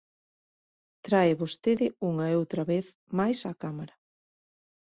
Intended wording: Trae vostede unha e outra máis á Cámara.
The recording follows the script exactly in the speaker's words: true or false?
false